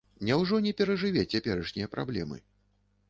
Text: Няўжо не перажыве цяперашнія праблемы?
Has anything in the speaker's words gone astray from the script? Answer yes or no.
no